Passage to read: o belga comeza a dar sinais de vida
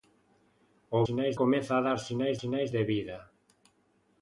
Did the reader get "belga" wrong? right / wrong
wrong